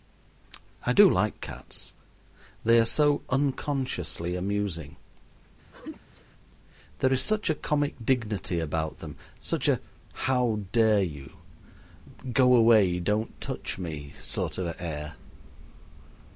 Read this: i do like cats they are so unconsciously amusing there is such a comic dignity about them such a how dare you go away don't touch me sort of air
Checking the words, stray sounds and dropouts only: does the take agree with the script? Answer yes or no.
no